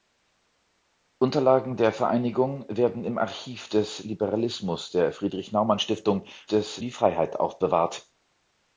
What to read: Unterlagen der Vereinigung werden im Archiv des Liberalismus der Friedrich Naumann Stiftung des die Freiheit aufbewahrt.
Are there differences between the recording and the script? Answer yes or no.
no